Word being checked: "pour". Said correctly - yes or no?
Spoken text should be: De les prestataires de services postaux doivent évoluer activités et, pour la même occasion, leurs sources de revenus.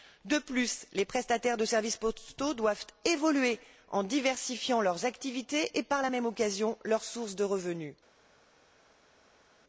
no